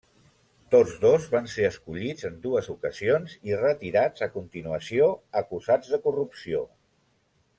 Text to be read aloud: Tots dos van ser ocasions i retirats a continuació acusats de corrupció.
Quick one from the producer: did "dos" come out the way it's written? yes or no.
yes